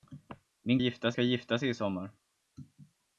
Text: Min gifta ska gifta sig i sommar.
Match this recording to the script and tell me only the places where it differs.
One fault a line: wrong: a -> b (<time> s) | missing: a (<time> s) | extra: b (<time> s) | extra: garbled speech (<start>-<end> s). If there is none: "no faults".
no faults